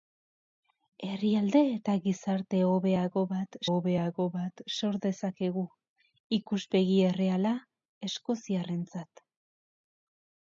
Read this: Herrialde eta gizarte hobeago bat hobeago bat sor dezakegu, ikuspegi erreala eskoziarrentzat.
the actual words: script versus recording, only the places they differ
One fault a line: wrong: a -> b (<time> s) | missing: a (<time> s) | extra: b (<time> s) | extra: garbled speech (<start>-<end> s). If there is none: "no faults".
no faults